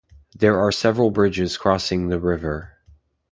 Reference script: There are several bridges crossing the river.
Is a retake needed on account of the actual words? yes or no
no